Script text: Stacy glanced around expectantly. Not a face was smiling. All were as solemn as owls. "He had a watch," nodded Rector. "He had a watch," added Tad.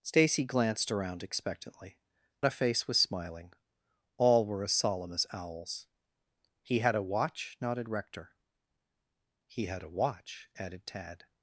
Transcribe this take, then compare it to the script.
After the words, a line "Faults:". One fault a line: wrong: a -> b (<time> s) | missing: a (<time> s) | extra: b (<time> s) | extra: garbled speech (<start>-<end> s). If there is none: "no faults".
Stacy glanced around expectantly. A face was smiling. All were as solemn as owls. "He had a watch," nodded Rector. "He had a watch," added Tad.
Faults:
missing: Not (2.0 s)